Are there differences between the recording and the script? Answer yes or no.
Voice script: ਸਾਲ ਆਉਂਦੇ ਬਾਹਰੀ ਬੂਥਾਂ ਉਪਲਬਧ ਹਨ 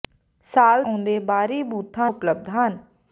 no